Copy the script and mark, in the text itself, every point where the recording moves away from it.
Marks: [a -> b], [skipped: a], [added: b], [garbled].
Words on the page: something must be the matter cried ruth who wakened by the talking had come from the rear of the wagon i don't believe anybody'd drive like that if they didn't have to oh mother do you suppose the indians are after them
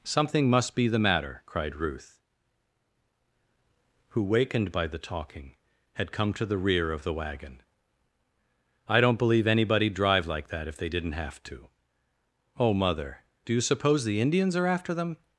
something must be the matter cried ruth who wakened by the talking had come [from -> to] the rear of the wagon i don't believe anybody'd drive like that if they didn't have to oh mother do you suppose the indians are after them